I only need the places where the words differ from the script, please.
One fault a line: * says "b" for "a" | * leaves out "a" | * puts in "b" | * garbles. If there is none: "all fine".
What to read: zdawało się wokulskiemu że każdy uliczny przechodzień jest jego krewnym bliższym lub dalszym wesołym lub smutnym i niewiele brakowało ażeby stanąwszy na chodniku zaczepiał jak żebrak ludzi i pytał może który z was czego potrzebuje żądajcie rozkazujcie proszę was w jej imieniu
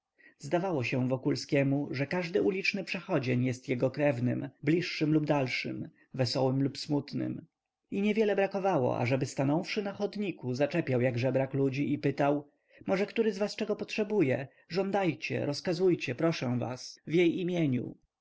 all fine